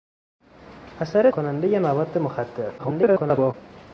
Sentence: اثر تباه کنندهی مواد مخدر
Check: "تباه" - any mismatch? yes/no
yes